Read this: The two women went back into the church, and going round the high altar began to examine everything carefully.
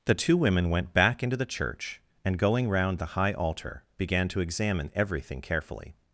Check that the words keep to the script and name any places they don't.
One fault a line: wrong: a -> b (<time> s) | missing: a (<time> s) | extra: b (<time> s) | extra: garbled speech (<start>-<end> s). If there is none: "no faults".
no faults